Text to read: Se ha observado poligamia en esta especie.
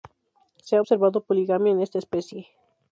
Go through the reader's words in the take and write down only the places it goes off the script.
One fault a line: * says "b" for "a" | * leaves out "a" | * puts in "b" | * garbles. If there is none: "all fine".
all fine